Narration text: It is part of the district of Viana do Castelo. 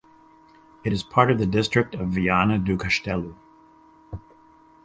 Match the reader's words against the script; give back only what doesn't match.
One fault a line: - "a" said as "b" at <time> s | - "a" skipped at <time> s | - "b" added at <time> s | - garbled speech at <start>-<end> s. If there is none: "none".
none